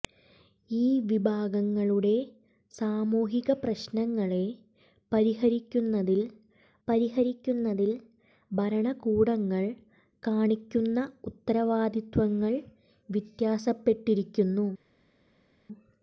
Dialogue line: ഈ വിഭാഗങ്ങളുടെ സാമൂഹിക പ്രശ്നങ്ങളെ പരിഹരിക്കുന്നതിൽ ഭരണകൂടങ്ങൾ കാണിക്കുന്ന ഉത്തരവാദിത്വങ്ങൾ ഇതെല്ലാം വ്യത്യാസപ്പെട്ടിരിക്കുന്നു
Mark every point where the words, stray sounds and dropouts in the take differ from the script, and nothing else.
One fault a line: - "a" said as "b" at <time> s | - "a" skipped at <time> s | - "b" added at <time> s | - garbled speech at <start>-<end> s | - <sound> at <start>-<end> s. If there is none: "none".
- "പരിഹരിക്കുന്നതിൽ" added at 6.9 s
- "ഇതെല്ലാം" skipped at 12.5 s